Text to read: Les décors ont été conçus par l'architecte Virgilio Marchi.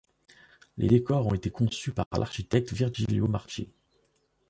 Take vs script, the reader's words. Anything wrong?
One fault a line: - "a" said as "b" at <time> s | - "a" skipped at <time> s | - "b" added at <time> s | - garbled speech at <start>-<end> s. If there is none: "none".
none